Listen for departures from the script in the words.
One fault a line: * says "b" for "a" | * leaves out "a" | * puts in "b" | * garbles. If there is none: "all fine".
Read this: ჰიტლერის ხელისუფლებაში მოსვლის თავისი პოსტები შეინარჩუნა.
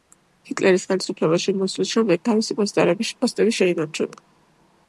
* puts in "შემდეგ"